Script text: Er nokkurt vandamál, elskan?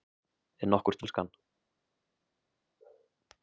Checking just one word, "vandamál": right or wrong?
wrong